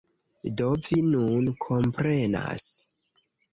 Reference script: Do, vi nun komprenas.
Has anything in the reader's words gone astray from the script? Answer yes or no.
no